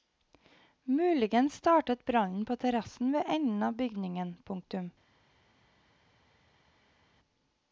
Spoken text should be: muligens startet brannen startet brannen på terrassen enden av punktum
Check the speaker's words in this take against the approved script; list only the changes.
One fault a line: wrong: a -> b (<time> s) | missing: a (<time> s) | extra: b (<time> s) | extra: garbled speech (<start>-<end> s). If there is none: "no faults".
missing: startet brannen (2.5 s)
extra: ved (3.1 s)
extra: bygningen (3.8 s)